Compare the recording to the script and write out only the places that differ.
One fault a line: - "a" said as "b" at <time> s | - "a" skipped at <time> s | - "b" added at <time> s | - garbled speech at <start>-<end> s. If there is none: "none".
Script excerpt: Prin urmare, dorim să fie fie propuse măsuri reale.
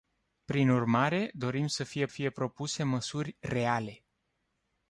none